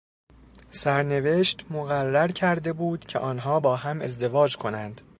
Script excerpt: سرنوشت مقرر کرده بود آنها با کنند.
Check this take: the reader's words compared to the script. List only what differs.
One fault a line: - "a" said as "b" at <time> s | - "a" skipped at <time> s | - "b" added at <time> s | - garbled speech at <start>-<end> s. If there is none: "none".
- "که" added at 3.0 s
- "هم ازدواج" added at 3.8 s